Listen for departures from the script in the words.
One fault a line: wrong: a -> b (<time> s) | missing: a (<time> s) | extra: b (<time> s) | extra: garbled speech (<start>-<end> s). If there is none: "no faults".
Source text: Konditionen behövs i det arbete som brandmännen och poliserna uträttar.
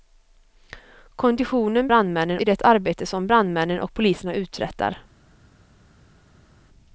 wrong: behövs -> brandmännen (1.9 s)